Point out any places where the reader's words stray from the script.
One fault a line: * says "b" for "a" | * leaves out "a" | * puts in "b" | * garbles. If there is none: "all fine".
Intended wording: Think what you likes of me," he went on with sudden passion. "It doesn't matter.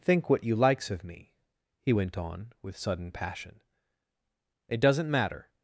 all fine